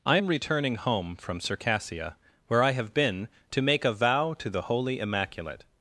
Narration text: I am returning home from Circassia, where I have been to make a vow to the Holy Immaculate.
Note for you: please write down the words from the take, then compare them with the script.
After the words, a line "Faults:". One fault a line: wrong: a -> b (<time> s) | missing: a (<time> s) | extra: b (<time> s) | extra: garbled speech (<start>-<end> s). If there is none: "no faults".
I am returning home from Circassia, where I have been to make a vow to the Holy Immaculate.
Faults:
no faults